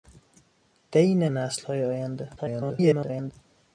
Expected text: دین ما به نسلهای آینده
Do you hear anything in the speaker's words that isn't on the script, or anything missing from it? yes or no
yes